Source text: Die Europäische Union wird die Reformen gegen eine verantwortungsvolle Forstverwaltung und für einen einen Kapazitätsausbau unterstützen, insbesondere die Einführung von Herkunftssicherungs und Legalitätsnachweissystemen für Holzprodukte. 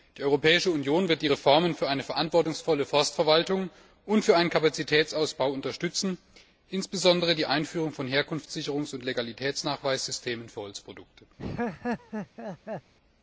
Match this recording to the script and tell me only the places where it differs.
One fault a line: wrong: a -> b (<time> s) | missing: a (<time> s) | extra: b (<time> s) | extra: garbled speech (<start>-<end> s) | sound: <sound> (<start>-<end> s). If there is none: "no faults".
wrong: gegen -> für (1.7 s)
missing: einen (4.5 s)
sound: laugh (11.4-12.9 s)